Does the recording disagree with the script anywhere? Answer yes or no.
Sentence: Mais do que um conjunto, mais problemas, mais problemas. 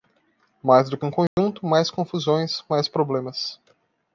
yes